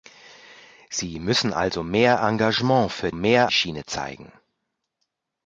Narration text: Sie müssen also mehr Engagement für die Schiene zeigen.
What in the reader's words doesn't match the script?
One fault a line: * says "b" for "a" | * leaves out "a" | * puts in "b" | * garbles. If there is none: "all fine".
* says "mehr" for "die"